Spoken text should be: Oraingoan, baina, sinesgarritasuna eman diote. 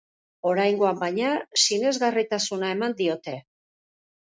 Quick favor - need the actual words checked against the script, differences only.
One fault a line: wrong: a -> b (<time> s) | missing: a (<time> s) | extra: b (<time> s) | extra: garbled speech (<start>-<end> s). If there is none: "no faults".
no faults